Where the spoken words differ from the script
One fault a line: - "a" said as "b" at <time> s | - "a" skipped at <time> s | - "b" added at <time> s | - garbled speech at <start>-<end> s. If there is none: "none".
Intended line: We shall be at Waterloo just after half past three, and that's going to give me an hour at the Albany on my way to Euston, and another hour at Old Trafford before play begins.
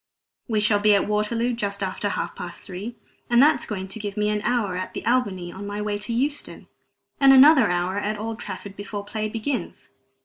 none